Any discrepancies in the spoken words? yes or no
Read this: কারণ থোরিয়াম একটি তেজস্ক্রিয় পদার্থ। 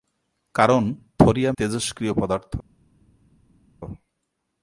yes